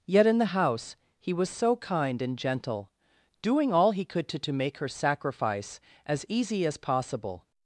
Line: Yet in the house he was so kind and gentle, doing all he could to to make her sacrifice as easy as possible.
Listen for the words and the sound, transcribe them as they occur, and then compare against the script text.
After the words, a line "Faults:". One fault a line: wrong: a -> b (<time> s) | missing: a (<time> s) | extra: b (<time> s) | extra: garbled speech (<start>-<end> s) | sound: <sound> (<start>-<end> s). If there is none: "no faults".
Yet in the house he was so kind and gentle, doing all he could to to make her sacrifice as easy as possible.
Faults:
no faults